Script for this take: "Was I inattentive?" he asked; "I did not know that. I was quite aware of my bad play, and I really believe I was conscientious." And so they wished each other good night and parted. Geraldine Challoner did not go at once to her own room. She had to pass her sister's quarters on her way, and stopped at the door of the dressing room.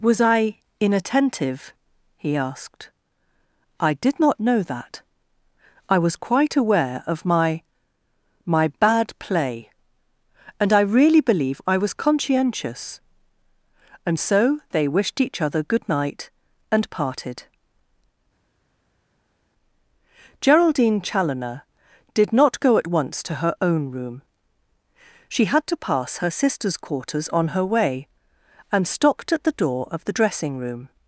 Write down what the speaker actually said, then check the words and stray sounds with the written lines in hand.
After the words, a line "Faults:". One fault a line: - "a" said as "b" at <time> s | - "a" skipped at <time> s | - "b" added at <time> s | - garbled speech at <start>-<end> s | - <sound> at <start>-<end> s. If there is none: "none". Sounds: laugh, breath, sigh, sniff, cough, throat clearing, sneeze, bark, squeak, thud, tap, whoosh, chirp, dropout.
"Was I inattentive?" he asked; "I did not know that. I was quite aware of my my bad play, and I really believe I was conscientious." And so they wished each other good night and parted. Geraldine Challoner did not go at once to her own room. She had to pass her sister's quarters on her way, and stopped at the door of the dressing room.
Faults:
- "my" added at 8.5 s